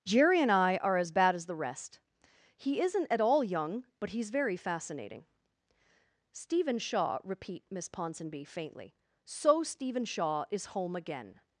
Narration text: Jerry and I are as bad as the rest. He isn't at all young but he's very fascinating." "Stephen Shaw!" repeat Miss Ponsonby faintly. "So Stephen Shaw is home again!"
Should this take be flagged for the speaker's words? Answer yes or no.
no